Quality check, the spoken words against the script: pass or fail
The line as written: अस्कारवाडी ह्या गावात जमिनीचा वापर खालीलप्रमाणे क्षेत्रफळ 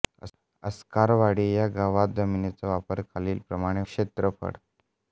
pass